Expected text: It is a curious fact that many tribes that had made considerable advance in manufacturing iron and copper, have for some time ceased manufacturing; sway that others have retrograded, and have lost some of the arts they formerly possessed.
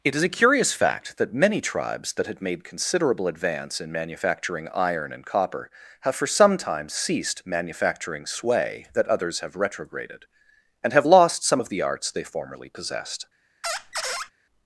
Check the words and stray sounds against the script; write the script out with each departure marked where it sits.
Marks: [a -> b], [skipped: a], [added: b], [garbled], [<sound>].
It is a curious fact that many tribes that had made considerable advance in manufacturing iron and copper, have for some time ceased manufacturing; sway that others have retrograded, and have lost some of the arts they formerly possessed. [squeak]